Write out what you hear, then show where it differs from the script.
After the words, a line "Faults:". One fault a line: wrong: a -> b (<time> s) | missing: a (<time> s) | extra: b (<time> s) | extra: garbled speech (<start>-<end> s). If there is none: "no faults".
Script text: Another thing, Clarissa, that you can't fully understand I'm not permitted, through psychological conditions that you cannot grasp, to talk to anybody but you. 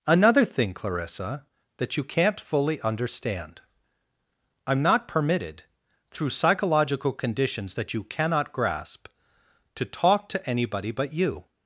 Another thing, Clarissa, that you can't fully understand I'm not permitted, through psychological conditions that you cannot grasp, to talk to anybody but you.
Faults:
no faults